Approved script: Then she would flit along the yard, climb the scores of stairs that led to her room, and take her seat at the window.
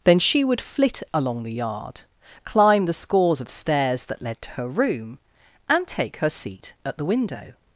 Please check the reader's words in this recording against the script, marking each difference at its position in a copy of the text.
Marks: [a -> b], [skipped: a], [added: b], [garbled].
Then she would flit along the yard, climb the scores of stairs that led to her room, and take her seat at the window.